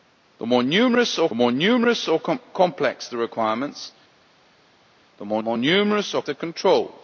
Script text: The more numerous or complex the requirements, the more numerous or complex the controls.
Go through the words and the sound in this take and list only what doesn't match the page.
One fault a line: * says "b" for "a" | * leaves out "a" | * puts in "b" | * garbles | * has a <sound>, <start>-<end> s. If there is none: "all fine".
* puts in "more numerous or"
* puts in "more"
* leaves out "complex"